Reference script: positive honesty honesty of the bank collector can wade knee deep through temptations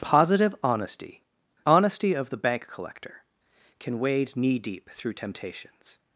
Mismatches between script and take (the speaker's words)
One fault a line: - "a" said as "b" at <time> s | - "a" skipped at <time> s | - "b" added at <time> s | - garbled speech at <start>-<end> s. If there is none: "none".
none